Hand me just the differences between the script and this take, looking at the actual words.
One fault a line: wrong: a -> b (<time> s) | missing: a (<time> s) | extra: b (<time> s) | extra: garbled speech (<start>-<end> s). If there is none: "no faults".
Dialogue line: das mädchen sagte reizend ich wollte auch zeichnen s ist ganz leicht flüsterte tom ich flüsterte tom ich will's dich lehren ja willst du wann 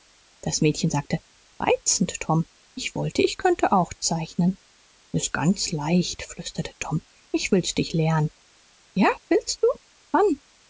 extra: tom (2.2 s)
extra: ich könnte (3.2 s)
missing: flüsterte tom ich (7.5 s)